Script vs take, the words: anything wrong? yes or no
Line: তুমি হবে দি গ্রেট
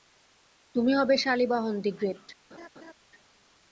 yes